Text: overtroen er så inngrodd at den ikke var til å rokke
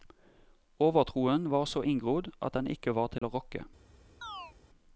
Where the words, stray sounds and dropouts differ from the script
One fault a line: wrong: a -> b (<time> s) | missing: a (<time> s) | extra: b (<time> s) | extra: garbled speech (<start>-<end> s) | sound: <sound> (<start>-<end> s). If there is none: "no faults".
wrong: er -> var (1.5 s)
sound: dropout (3.2-3.2 s)
sound: chirp (4.2-4.5 s)